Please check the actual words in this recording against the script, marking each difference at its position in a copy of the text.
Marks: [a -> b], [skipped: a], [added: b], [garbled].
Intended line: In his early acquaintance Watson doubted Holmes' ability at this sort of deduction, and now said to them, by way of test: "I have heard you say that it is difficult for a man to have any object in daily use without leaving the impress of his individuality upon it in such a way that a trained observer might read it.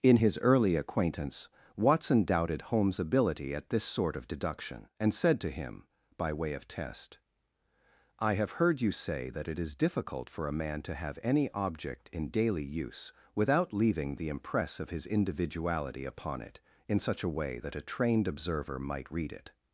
In his early acquaintance Watson doubted Holmes' ability at this sort of deduction, and [skipped: now] said to [them, -> him] by way of test: "I have heard you say that it is difficult for a man to have any object in daily use without leaving the impress of his individuality upon it in such a way that a trained observer might read it.